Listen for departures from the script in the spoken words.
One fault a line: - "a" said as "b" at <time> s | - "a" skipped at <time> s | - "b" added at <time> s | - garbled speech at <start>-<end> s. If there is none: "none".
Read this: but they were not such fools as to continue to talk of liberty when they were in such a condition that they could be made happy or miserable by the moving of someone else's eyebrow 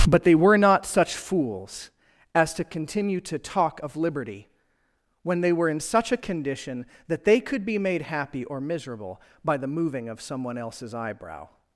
none